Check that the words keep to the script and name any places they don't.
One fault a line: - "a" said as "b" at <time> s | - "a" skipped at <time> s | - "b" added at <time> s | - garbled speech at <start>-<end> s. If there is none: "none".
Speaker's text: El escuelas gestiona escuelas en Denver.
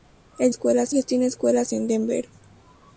none